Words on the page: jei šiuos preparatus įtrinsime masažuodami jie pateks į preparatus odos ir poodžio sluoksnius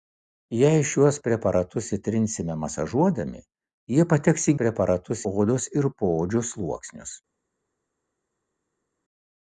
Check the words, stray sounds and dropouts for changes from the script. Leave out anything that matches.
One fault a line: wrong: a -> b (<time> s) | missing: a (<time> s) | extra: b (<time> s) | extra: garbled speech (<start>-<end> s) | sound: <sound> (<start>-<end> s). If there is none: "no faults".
no faults